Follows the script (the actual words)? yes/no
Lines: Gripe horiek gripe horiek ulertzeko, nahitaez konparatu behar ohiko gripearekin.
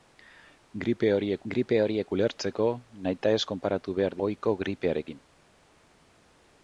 yes